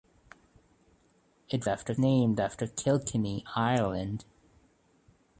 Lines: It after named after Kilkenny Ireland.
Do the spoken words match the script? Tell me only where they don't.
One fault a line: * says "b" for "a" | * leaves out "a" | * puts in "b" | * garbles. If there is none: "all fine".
all fine